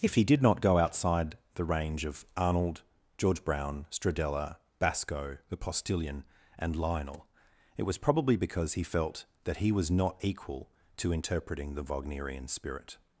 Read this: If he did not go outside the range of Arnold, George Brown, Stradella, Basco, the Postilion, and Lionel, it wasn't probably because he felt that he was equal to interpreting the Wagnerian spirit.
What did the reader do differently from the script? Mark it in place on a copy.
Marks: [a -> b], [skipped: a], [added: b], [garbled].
If he did not go outside the range of Arnold, George Brown, Stradella, Basco, the Postilion, and Lionel, it [wasn't -> was] probably because he felt that he was [added: not] equal to interpreting the Wagnerian spirit.